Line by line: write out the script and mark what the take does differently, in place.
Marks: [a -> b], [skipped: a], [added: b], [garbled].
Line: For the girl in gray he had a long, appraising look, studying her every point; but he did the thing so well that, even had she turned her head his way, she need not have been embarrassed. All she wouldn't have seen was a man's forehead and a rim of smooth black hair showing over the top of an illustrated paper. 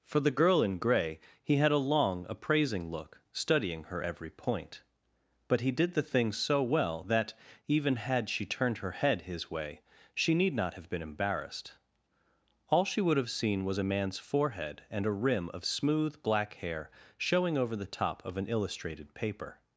For the girl in gray he had a long, appraising look, studying her every point; but he did the thing so well that, even had she turned her head his way, she need not have been embarrassed. All she [wouldn't -> would] have seen was a man's forehead and a rim of smooth black hair showing over the top of an illustrated paper.